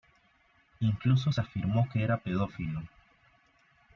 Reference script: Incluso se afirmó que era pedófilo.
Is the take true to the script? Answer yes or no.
yes